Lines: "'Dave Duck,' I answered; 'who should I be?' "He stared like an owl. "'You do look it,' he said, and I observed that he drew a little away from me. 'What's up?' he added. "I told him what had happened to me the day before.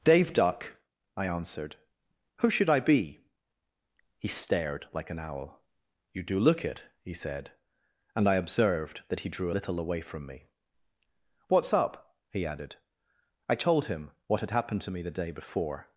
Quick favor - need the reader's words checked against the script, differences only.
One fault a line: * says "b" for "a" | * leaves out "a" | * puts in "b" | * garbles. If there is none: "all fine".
* leaves out "a"